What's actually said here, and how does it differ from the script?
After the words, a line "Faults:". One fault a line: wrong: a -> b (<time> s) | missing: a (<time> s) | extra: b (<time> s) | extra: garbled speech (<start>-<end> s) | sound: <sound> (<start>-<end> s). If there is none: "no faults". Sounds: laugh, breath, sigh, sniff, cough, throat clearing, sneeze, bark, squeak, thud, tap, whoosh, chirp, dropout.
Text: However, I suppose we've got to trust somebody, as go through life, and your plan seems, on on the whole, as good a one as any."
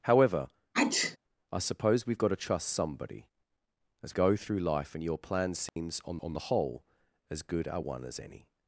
However, I suppose we've got to trust somebody, as go through life, and your plan seems, on on the whole, as good a one as any."
Faults:
sound: sneeze (0.7-1.2 s)
sound: dropout (5.7-5.8 s)